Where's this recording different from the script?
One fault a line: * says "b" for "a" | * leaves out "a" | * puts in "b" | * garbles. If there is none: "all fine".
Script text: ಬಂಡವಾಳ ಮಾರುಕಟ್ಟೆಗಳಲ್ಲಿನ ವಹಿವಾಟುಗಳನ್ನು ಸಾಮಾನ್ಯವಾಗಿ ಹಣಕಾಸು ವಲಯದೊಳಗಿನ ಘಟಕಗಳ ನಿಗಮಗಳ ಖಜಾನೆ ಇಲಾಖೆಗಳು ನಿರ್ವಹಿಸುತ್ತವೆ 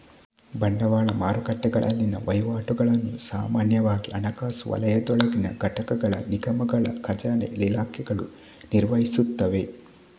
all fine